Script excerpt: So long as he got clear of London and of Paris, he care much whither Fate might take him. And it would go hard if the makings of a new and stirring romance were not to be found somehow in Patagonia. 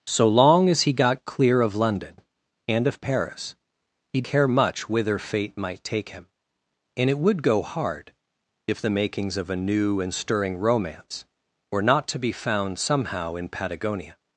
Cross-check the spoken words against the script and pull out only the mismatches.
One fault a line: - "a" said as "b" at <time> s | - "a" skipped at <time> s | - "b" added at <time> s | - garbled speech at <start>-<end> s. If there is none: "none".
none